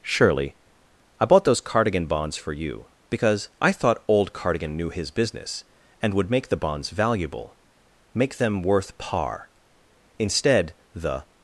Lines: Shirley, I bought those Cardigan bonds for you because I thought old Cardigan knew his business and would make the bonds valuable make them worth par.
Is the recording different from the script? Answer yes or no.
yes